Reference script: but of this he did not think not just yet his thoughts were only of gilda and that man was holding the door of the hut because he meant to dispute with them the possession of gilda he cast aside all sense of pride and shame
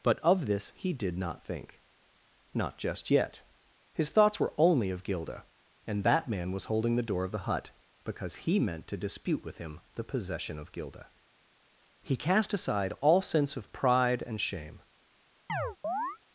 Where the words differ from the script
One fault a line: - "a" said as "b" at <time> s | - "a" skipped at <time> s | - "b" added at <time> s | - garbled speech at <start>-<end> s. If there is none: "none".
- "them" said as "him" at 9.6 s